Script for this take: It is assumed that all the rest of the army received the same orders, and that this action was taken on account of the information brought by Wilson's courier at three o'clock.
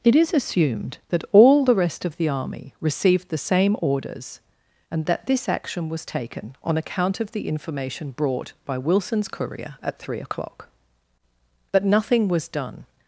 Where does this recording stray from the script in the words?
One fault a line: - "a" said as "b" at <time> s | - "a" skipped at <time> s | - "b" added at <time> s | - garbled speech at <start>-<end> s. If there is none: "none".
- "But nothing was done" added at 11.7 s